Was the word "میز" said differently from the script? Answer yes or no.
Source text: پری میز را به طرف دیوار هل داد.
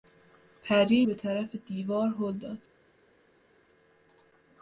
yes